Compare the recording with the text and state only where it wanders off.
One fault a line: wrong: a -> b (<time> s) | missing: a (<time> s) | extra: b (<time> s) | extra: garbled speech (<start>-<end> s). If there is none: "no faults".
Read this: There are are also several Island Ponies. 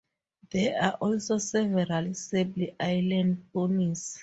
missing: are (0.9 s)
extra: Sable (2.1 s)